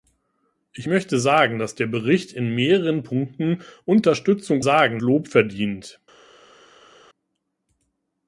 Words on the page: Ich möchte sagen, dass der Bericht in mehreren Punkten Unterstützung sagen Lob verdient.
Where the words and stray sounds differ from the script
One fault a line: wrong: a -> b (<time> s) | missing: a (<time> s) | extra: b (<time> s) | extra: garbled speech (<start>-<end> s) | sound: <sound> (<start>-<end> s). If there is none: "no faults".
no faults